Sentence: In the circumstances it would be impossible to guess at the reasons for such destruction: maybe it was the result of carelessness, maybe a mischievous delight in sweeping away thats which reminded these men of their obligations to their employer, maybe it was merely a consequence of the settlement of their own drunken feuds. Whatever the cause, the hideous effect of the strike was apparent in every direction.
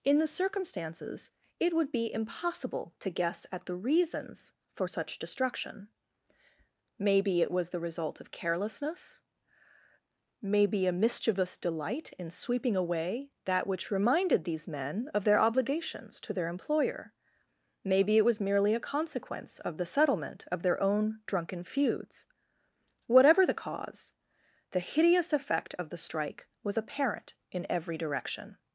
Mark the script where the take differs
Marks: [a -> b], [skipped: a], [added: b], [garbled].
In the circumstances it would be impossible to guess at the reasons for such destruction: maybe it was the result of carelessness, maybe a mischievous delight in sweeping away [thats -> that] which reminded these men of their obligations to their employer, maybe it was merely a consequence of the settlement of their own drunken feuds. Whatever the cause, the hideous effect of the strike was apparent in every direction.